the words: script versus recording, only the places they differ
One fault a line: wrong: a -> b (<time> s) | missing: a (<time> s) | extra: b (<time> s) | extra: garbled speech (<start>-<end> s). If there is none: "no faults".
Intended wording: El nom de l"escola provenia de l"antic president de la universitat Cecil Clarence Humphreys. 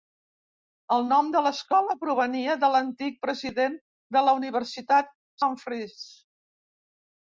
missing: Cecil Clarence (5.2 s)